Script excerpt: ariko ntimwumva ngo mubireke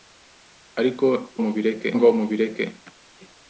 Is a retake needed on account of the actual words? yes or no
yes